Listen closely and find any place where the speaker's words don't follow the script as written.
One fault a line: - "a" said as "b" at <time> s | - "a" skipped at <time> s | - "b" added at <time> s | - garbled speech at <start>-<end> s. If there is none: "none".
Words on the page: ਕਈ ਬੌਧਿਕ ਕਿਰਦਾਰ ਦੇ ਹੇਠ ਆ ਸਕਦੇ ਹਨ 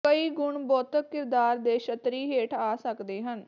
- "ਗੁਣ" added at 0.3 s
- "ਛਤਰੀ" added at 1.8 s